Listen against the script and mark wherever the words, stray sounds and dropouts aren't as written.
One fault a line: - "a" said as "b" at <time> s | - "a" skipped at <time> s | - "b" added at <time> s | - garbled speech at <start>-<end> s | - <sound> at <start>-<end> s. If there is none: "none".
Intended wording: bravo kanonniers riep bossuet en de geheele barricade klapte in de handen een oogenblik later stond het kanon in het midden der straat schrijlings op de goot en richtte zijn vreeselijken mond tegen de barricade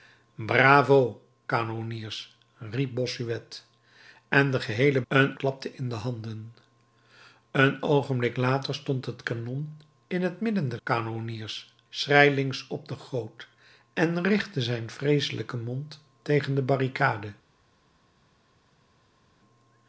- "barricade" said as "een" at 5.1 s
- "straat" said as "kanonniers" at 10.8 s